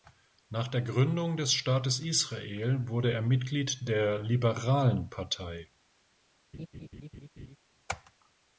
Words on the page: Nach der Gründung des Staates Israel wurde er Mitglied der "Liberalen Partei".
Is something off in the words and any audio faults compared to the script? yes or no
yes